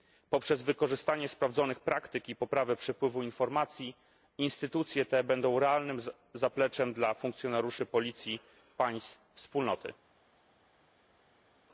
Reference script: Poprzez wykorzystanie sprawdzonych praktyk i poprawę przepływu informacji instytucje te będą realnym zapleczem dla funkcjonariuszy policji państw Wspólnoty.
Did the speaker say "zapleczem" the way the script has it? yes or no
yes